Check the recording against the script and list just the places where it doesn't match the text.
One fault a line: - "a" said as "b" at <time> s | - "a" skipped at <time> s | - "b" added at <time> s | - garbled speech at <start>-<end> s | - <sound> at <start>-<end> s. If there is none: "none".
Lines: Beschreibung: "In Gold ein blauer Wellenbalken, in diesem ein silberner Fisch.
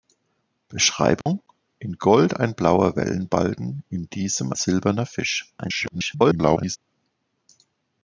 - dropout at 1.2-1.3 s
- "ein" skipped at 4.5 s
- garbled speech at 5.6-6.8 s